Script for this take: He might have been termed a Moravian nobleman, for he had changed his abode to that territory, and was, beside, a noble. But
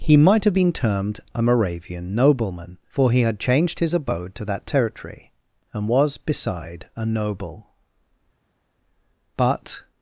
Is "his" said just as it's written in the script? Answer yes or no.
yes